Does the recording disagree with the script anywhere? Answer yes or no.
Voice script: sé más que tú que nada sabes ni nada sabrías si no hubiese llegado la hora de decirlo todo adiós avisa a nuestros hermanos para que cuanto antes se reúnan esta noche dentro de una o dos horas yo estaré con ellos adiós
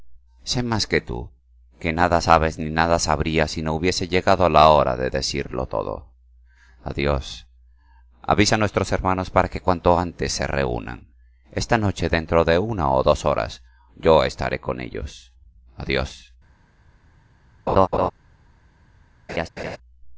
no